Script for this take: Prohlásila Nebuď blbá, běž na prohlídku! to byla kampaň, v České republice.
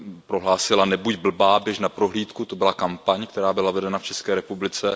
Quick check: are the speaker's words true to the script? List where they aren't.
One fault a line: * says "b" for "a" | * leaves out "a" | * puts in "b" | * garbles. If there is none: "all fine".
* puts in "která byla vedena"